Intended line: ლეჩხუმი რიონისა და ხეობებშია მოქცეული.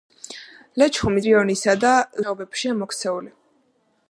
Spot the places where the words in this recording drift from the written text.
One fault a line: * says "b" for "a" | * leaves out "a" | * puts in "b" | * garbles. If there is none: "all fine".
all fine